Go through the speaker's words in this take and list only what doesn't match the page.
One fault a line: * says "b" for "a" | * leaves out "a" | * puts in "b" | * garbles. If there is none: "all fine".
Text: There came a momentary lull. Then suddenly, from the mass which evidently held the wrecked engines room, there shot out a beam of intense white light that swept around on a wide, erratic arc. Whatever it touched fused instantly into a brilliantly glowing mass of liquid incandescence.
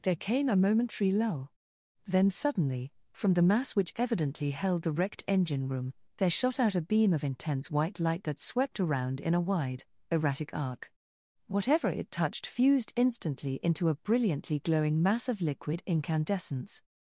* says "engine" for "engines"
* says "in" for "on"